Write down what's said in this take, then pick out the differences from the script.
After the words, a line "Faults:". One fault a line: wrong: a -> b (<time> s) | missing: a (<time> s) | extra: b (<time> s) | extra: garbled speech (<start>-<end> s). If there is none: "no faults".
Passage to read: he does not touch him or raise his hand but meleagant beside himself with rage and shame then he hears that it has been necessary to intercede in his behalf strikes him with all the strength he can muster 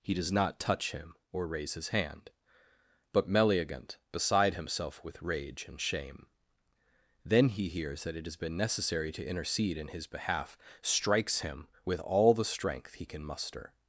he does not touch him or raise his hand but meleagant beside himself with rage and shame then he hears that it has been necessary to intercede in his behalf strikes him with all the strength he can muster
Faults:
no faults